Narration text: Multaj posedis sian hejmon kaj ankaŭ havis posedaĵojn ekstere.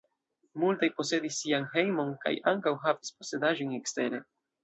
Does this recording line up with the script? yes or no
yes